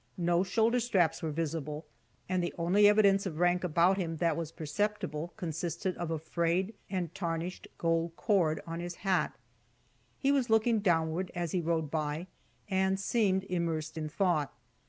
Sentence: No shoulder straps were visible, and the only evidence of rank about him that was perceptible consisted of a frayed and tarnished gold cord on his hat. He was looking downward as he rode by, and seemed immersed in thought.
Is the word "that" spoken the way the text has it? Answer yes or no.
yes